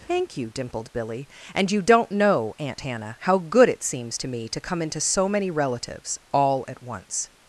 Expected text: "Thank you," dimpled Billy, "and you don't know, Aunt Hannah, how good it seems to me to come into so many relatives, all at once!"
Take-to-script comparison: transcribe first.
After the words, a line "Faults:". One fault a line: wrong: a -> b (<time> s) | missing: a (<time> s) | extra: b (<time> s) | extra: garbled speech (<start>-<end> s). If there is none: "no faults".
"Thank you," dimpled Billy, "and you don't know, Aunt Hannah, how good it seems to me to come into so many relatives, all at once!"
Faults:
no faults